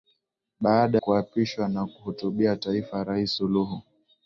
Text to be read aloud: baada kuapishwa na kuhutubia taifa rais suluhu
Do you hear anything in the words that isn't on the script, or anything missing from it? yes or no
no